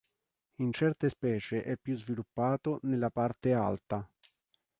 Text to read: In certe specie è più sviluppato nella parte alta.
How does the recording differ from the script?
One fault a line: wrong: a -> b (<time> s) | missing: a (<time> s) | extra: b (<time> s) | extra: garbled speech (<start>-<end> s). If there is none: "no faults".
no faults